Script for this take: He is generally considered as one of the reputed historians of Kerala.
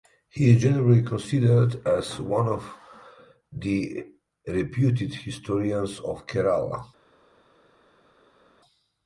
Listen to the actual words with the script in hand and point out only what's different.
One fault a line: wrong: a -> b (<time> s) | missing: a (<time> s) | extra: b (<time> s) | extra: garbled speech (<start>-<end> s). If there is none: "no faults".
no faults